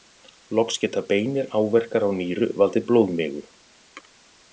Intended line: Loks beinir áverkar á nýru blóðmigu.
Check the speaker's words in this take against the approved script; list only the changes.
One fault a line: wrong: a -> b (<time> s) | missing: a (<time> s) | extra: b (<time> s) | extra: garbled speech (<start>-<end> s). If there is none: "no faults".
extra: geta (0.8 s)
extra: valdið (2.6 s)